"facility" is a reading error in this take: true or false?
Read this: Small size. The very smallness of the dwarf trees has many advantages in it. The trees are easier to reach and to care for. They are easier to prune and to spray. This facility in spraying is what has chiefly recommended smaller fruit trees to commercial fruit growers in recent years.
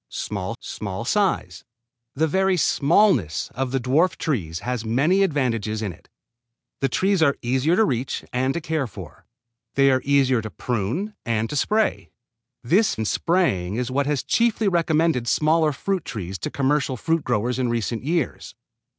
true